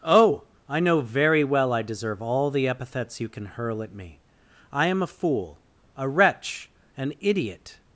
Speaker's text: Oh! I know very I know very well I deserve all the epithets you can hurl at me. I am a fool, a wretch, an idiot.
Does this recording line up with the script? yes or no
no